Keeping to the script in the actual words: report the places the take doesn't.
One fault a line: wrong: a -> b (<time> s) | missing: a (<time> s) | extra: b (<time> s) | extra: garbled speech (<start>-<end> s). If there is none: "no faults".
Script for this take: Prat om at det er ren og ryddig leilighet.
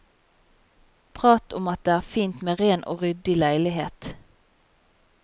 extra: fint med (2.1 s)